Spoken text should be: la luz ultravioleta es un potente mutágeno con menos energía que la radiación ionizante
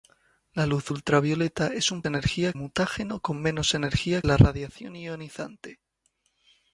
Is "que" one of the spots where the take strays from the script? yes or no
yes